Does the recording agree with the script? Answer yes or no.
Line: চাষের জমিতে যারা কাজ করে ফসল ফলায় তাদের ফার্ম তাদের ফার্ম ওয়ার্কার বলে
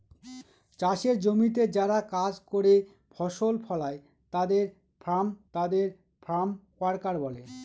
yes